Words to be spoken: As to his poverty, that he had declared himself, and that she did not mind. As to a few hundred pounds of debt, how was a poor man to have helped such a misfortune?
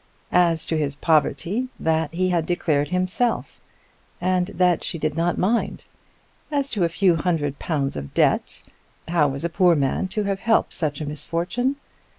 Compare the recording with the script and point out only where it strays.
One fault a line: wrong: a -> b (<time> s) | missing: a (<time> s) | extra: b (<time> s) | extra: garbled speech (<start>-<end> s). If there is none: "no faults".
no faults